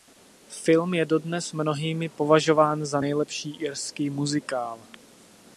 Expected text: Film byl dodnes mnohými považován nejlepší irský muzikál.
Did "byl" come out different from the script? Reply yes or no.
yes